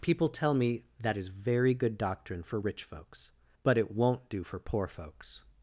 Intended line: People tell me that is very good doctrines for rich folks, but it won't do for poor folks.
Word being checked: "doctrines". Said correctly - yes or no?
no